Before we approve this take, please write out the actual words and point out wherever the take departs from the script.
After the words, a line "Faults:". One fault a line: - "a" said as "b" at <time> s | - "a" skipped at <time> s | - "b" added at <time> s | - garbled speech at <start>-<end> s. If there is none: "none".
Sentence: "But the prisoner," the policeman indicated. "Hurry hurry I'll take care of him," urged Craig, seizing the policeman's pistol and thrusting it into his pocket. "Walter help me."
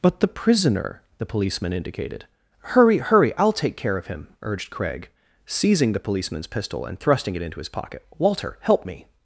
"But the prisoner," the policeman indicated. "Hurry hurry I'll take care of him," urged Craig, seizing the policeman's pistol and thrusting it into his pocket. "Walter help me."
Faults:
none